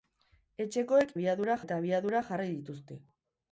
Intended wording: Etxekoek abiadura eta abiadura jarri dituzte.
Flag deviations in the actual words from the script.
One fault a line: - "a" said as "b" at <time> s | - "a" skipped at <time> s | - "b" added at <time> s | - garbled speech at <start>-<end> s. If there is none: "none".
none